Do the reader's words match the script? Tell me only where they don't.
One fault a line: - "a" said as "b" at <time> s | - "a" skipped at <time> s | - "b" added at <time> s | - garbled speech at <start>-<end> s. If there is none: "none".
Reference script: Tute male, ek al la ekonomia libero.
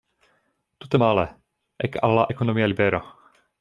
none